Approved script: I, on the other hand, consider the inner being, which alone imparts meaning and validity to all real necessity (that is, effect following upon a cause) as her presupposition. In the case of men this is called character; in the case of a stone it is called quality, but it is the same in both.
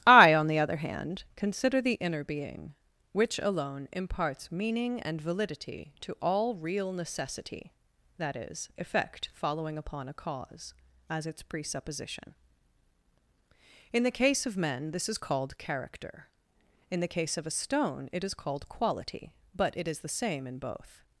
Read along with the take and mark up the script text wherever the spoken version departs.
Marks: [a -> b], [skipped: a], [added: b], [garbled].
I, on the other hand, consider the inner being, which alone imparts meaning and validity to all real necessity (that is, effect following upon a cause) as [her -> its] presupposition. In the case of men this is called character; in the case of a stone it is called quality, but it is the same in both.